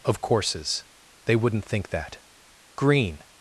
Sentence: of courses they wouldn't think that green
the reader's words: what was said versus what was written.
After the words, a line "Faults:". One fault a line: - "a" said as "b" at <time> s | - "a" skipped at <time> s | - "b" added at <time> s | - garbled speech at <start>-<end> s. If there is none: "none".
of courses they wouldn't think that green
Faults:
none